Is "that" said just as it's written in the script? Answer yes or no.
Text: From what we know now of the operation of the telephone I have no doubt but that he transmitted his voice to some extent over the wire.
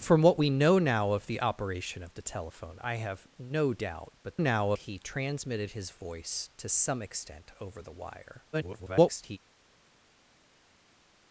no